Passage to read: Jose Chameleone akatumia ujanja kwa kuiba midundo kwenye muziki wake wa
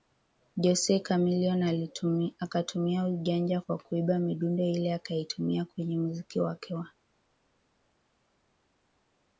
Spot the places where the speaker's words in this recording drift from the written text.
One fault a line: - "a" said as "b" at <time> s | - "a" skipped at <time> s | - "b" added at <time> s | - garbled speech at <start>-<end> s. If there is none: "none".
- "ile akaitumia" added at 4.6 s